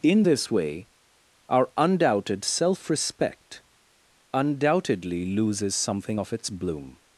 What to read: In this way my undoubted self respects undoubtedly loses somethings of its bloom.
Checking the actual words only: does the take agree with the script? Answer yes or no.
no